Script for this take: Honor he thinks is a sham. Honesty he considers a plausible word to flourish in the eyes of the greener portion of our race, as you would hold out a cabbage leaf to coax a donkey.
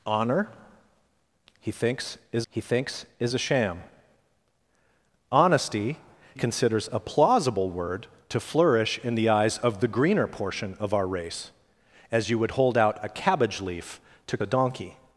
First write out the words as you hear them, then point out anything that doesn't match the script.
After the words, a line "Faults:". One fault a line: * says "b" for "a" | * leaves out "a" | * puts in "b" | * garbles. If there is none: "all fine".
Honor he thinks is he thinks is a sham. Honesty considers a plausible word to flourish in the eyes of the greener portion of our race, as you would hold out a cabbage leaf to a donkey.
Faults:
* puts in "he thinks is"
* leaves out "he"
* leaves out "coax"